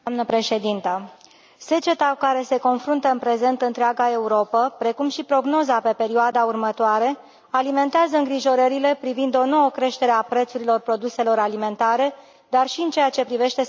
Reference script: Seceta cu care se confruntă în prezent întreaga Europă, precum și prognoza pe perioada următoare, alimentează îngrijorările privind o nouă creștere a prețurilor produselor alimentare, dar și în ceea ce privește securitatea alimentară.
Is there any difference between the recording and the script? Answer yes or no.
no